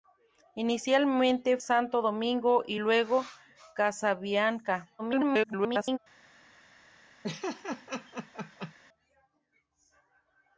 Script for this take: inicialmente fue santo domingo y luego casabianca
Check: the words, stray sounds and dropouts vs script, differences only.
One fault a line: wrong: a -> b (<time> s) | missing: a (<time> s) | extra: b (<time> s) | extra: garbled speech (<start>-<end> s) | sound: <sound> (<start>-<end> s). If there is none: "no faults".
missing: fue (1.6 s)
extra: garbled speech (5.0-6.0 s)
sound: laugh (7.2-8.7 s)